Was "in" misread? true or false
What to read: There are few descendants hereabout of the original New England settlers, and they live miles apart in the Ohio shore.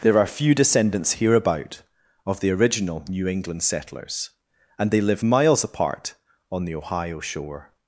true